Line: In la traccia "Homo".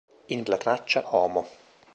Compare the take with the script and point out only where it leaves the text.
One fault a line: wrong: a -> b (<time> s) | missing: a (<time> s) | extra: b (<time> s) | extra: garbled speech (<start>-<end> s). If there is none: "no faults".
no faults